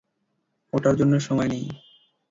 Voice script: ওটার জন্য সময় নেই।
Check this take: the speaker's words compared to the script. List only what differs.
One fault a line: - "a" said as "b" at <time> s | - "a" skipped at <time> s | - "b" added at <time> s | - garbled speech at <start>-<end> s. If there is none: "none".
none